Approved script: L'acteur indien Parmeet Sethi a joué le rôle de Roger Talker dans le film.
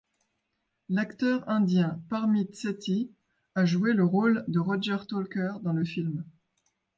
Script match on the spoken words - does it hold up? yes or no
yes